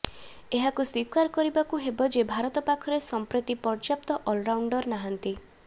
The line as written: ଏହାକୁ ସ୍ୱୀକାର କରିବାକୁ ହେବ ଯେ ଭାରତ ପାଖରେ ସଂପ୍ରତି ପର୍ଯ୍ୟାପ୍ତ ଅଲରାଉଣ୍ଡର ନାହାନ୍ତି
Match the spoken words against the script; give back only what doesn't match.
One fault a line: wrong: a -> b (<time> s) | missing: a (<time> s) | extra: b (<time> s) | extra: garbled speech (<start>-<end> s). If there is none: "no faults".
no faults